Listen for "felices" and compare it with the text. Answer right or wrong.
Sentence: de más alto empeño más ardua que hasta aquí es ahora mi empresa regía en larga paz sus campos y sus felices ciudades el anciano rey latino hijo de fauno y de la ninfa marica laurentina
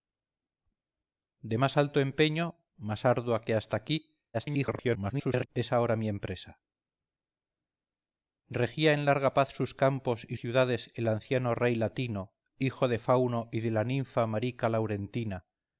wrong